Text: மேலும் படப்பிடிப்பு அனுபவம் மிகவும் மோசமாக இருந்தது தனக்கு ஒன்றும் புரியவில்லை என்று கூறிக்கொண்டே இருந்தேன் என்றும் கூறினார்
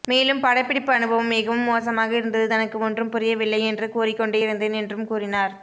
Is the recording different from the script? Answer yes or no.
no